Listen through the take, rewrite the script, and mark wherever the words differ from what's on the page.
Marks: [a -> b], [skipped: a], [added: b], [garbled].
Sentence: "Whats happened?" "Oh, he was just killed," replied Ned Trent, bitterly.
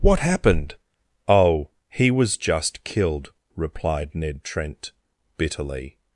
["Whats -> What] happened?" "Oh, he was just killed," replied Ned Trent, bitterly.